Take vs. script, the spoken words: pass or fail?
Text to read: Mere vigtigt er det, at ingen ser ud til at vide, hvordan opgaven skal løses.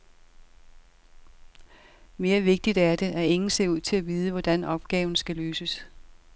pass